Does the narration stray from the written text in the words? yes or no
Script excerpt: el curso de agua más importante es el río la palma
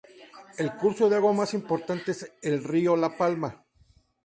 no